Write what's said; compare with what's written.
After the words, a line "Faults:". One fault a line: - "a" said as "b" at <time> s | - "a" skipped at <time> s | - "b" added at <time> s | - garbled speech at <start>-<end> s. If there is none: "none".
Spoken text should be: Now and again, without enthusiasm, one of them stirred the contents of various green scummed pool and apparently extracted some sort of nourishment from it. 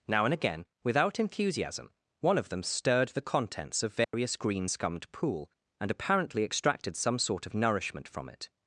Now and again, without enthusiasm, one of them stirred the contents of various green scummed pool and apparently extracted some sort of nourishment from it.
Faults:
none